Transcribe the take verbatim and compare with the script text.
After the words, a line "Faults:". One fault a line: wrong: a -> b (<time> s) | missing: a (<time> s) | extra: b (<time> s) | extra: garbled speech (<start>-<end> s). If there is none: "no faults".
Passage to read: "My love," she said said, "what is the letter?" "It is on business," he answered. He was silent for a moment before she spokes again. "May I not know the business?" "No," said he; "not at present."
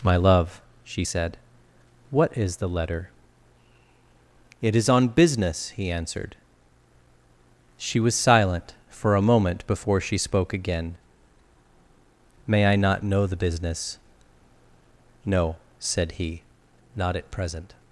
"My love," she said, "what is the letter?" "It is on business," he answered. She was silent for a moment before she spoke again. "May I not know the business?" "No," said he; "not at present."
Faults:
missing: said (1.4 s)
wrong: He -> She (7.8 s)
wrong: spokes -> spoke (10.2 s)